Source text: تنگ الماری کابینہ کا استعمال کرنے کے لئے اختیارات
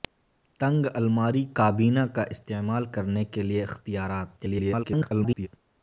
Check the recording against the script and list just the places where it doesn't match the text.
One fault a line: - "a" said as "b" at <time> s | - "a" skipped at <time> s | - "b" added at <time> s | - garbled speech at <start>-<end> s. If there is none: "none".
- garbled speech at 4.4-5.5 s